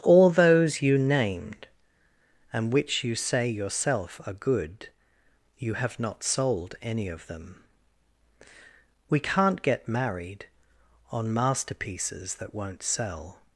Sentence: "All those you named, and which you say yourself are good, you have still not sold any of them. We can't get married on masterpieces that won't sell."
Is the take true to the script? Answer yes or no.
no